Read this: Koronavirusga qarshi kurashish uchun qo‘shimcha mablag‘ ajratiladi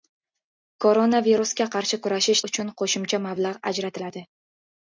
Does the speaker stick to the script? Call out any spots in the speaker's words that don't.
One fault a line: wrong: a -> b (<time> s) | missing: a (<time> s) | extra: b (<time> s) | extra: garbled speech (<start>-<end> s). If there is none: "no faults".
no faults